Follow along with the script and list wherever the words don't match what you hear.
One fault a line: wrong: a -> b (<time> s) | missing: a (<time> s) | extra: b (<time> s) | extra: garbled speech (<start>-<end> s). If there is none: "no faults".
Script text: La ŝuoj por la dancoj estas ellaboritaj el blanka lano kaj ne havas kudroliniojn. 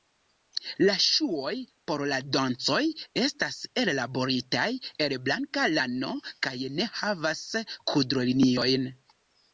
no faults